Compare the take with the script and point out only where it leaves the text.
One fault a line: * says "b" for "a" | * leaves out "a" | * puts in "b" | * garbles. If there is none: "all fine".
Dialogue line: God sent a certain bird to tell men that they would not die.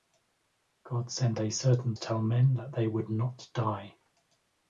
* leaves out "bird"